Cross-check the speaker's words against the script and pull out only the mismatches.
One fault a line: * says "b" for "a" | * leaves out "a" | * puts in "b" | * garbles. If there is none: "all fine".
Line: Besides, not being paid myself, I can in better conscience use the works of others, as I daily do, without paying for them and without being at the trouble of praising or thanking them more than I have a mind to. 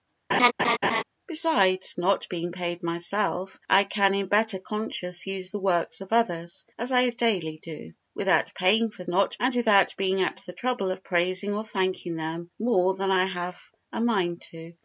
* says "not" for "them"